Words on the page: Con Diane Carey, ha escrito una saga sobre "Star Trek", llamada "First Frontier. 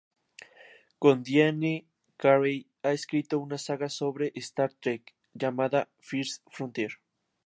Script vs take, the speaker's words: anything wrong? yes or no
no